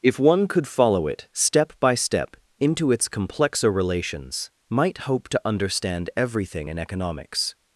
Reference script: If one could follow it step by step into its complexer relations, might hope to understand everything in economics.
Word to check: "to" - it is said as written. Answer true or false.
true